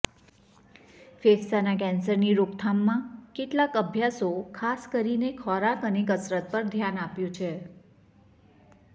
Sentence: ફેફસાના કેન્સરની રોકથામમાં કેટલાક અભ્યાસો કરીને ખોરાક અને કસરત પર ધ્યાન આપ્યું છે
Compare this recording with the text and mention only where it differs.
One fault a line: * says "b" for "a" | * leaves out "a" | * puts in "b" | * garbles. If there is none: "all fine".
* puts in "ખાસ"